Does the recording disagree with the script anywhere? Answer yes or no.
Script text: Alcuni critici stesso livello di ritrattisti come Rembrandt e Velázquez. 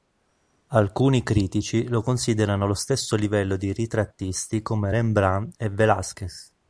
yes